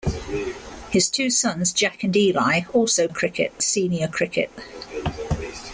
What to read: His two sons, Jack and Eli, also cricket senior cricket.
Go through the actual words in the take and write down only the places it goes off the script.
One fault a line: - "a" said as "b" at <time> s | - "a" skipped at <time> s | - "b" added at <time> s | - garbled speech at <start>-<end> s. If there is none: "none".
none